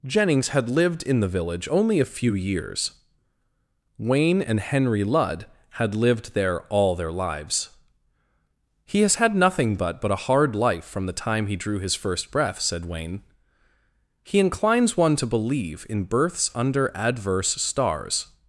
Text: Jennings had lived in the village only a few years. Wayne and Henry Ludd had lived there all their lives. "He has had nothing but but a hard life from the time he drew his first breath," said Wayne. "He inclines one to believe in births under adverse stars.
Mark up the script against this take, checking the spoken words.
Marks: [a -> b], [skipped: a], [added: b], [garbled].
Jennings had lived in the village only a few years. Wayne and Henry Ludd had lived there all their lives. "He has had nothing but but a hard life from the time he drew his first breath," said Wayne. "He inclines one to believe in births under adverse stars.